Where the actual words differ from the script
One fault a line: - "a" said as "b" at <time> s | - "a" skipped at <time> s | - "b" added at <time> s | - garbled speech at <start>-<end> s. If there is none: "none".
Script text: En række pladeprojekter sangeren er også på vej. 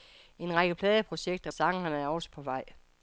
none